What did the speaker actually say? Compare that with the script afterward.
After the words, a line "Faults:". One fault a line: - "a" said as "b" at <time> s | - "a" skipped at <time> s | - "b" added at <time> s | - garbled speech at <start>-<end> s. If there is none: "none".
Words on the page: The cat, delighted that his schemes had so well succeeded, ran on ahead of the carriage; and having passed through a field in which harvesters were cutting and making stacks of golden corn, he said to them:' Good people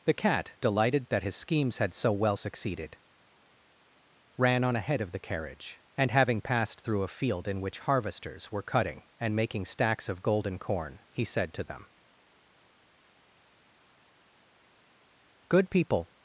The cat, delighted that his schemes had so well succeeded, ran on ahead of the carriage; and having passed through a field in which harvesters were cutting and making stacks of golden corn, he said to them:' Good people
Faults:
none